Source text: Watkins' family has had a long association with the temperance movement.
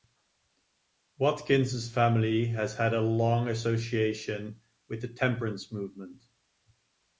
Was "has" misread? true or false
false